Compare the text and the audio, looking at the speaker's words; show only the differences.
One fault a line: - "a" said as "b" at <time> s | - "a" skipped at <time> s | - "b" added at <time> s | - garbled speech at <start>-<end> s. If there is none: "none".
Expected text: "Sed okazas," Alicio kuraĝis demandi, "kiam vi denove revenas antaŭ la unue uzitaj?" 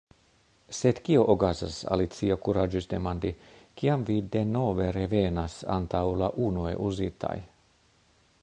- "kio" added at 1.1 s